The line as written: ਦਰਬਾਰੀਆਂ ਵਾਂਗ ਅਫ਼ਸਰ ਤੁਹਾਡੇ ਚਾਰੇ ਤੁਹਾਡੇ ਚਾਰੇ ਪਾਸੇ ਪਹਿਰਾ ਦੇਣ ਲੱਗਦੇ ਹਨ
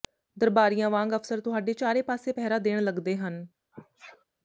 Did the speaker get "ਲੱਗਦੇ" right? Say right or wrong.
right